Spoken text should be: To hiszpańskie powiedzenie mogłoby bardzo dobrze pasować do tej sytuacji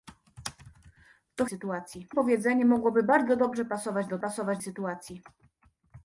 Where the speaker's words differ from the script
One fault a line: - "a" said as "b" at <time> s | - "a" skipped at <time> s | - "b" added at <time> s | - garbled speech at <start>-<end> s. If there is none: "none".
- "hiszpańskie" said as "sytuacji" at 1.5 s
- "tej" said as "pasować" at 4.2 s